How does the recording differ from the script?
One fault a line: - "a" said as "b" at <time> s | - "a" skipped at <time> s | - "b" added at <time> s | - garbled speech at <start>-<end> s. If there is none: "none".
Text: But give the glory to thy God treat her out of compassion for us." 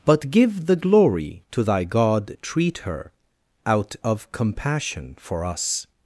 none